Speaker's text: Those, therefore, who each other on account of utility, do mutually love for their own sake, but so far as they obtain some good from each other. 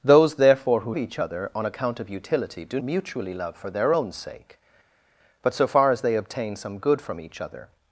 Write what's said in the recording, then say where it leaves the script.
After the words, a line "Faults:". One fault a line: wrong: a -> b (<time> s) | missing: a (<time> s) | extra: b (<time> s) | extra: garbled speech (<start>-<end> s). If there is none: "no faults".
Those, therefore, who each other on account of utility, do mutually love for their own sake, but so far as they obtain some good from each other.
Faults:
no faults